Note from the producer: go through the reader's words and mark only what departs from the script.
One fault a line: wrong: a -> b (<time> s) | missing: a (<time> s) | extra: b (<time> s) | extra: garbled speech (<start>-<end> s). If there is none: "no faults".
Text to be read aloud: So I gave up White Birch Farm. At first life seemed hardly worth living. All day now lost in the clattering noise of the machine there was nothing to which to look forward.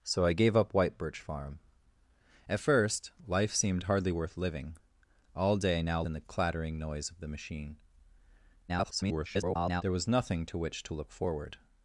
missing: lost (6.0 s)
extra: garbled speech (8.7-9.8 s)